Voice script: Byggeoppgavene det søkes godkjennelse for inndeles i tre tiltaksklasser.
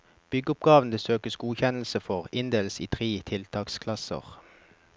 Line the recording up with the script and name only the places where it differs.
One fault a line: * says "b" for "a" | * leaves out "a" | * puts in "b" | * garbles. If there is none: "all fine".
all fine